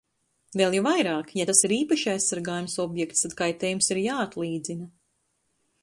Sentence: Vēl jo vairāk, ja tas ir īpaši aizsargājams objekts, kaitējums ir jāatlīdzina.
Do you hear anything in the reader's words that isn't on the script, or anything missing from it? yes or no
yes